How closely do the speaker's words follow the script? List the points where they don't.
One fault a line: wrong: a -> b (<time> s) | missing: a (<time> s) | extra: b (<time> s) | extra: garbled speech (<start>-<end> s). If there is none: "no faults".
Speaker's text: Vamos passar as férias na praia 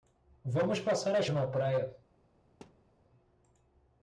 missing: férias (1.3 s)